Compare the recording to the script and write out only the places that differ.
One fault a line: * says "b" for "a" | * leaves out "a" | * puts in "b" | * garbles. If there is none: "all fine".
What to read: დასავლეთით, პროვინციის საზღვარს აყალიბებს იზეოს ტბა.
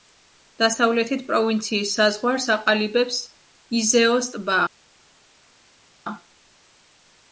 all fine